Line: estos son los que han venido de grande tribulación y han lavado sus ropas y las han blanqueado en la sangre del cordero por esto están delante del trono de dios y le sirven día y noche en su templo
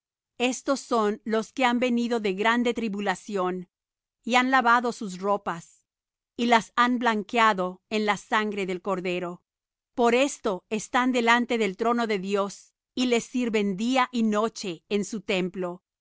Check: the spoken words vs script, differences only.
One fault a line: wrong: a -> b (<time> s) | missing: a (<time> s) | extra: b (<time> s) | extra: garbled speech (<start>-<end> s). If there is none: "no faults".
no faults